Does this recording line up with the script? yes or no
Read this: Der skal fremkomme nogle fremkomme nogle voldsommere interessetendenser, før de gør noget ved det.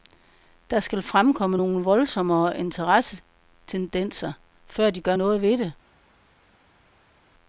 no